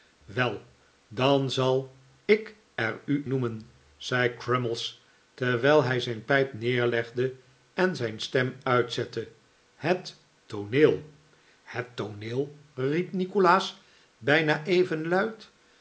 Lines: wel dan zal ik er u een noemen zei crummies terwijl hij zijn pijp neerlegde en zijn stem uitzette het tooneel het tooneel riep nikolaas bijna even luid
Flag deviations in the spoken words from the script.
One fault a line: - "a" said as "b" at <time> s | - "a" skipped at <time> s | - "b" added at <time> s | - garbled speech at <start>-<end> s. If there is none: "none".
- "een" skipped at 3.2 s